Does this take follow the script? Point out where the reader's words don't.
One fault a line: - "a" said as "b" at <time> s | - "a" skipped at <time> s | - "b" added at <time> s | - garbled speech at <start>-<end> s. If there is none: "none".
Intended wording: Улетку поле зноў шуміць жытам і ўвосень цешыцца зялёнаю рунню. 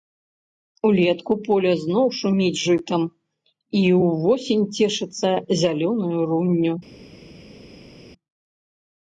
none